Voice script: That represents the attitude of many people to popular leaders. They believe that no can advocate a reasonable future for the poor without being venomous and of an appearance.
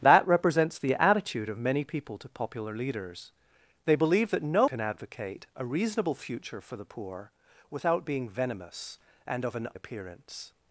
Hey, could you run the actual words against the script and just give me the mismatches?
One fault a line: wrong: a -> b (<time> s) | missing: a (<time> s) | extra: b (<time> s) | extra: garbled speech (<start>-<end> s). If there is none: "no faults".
no faults